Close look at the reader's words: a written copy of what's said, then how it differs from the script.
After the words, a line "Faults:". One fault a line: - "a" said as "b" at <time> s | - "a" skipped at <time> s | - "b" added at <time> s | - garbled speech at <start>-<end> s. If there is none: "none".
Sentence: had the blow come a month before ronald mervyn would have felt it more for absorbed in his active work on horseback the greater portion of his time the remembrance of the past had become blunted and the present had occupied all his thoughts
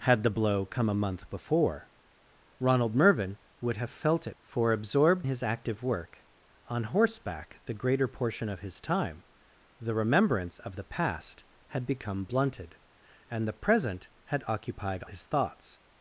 had the blow come a month before ronald mervyn would have felt it for absorbed his active work on horseback the greater portion of his time the remembrance of the past had become blunted and the present had occupied his thoughts
Faults:
- "more" skipped at 4.3 s
- "in" skipped at 5.3 s
- "all" skipped at 15.0 s